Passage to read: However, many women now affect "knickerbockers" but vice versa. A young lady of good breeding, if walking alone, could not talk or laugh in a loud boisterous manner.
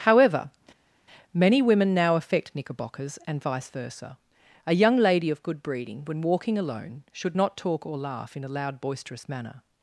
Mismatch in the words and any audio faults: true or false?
true